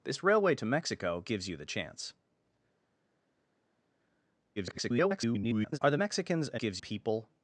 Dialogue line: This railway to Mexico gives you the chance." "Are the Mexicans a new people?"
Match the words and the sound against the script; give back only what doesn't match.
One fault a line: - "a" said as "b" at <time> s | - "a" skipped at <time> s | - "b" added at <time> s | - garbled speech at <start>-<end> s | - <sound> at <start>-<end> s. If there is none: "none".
- garbled speech at 4.6-5.8 s
- "new" said as "gives" at 6.5 s